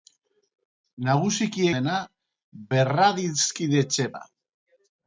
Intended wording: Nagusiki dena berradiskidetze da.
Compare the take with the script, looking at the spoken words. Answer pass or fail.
pass